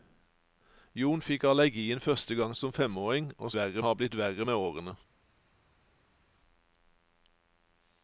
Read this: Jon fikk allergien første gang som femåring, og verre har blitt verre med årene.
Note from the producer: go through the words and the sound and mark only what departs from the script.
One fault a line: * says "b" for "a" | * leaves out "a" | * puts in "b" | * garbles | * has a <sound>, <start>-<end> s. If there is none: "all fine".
all fine